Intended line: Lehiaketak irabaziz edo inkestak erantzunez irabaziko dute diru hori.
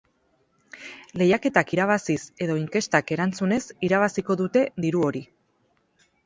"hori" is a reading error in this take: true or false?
false